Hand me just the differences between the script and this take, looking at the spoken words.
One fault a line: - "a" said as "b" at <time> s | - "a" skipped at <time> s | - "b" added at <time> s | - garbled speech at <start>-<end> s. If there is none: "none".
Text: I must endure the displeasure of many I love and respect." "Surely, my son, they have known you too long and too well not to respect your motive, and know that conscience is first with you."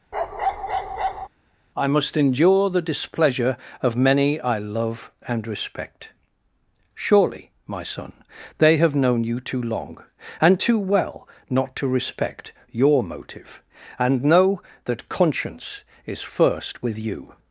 none